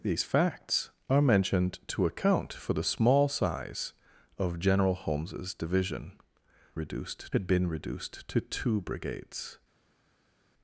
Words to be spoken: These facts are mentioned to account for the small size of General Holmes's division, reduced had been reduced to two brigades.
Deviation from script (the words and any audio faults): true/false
false